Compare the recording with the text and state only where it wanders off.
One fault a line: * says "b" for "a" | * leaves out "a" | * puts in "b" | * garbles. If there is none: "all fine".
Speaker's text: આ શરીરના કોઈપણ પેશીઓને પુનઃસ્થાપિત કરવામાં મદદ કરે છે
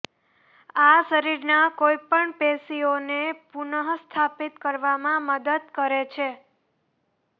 all fine